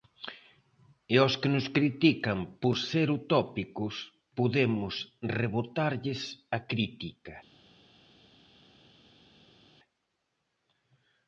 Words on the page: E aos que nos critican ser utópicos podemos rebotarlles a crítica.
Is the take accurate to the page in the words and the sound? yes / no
no